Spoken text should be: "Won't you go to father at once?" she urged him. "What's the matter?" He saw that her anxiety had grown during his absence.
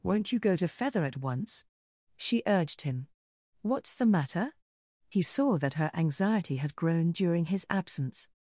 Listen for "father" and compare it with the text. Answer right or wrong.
wrong